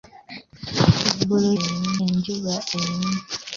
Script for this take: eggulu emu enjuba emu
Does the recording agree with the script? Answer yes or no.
yes